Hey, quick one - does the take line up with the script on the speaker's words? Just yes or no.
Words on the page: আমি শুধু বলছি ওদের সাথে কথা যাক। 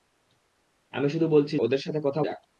yes